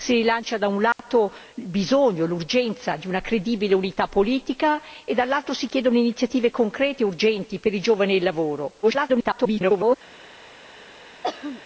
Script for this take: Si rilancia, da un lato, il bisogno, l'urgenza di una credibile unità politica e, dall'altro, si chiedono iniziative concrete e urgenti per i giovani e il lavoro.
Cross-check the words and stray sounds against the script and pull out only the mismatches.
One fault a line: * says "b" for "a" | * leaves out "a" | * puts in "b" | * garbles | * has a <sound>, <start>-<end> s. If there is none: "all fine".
* has a dropout, 0.9-1.0 s
* garbles
* has a throat clearing, 11.2-11.6 s